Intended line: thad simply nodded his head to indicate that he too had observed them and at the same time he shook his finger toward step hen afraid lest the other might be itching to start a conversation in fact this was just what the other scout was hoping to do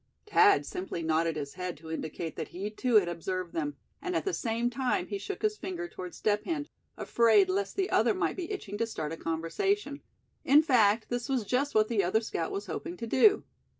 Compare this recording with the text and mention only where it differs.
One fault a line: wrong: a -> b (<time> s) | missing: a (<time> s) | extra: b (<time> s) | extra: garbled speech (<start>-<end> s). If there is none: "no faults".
no faults